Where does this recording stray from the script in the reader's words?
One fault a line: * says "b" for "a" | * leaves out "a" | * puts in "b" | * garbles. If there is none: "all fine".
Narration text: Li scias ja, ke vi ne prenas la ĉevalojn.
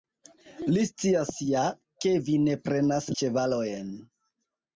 * leaves out "la"